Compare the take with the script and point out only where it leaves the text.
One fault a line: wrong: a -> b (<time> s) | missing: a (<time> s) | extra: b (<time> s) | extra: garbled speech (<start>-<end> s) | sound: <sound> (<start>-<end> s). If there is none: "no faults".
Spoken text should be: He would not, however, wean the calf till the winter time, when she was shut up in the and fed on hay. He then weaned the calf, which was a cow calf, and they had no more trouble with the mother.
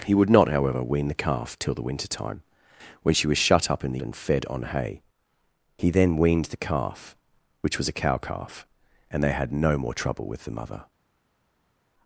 no faults